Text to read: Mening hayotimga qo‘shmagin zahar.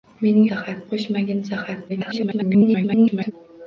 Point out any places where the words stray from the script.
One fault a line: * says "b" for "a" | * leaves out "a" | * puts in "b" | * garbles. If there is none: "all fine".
* says "zahar" for "hayotimga"
* garbles